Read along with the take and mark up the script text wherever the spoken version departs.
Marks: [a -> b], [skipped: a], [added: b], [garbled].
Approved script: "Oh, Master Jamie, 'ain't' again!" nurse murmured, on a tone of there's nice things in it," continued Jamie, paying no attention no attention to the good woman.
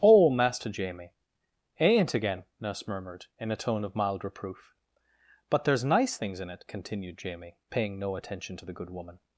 "Oh, Master Jamie, 'ain't' again!" nurse murmured, [on -> in] a tone of [added: mild reproof But] there's nice things in it," continued Jamie, paying no attention [skipped: no attention] to the good woman.